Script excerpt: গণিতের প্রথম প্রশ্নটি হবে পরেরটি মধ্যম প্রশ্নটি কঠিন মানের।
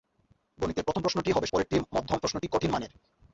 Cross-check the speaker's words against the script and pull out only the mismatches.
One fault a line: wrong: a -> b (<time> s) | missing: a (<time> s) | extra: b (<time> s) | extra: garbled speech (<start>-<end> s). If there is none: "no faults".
no faults